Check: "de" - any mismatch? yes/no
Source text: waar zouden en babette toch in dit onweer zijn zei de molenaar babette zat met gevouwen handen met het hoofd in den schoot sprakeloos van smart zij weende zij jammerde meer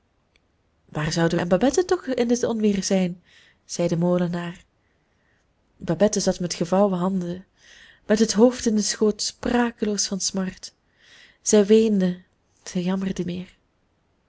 no